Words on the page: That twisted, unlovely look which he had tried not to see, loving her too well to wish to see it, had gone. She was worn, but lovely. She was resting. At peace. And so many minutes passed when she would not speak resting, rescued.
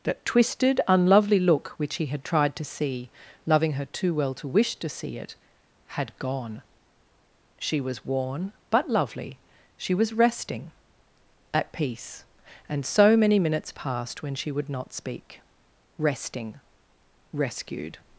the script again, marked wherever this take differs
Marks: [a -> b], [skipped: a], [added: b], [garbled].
That twisted, unlovely look which he had tried [skipped: not] to see, loving her too well to wish to see it, had gone. She was worn, but lovely. She was resting. At peace. And so many minutes passed when she would not speak resting, rescued.